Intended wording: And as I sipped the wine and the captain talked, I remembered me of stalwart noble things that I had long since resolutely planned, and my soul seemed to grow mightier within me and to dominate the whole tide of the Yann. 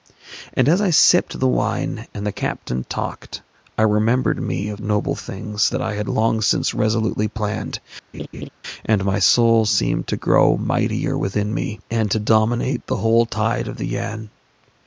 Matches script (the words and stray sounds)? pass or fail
fail